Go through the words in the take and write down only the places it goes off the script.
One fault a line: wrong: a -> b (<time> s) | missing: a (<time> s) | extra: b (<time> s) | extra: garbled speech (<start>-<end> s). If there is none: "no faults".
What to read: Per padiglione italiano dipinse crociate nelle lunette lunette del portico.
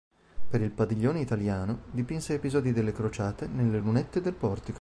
extra: il (0.6 s)
extra: episodi delle (2.3 s)
missing: lunette (4.2 s)